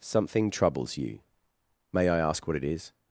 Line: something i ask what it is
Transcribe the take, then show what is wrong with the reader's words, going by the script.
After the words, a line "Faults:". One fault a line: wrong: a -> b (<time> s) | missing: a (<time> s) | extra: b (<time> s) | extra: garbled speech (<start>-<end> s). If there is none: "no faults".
something troubles you may i ask what it is
Faults:
extra: troubles you may (0.5 s)